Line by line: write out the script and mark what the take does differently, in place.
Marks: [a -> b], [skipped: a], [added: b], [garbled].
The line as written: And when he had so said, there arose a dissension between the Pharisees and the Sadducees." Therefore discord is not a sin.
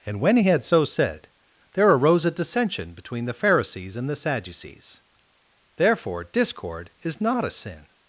And when he had so said, there arose a dissension between the Pharisees and the Sadducees." Therefore discord is not a sin.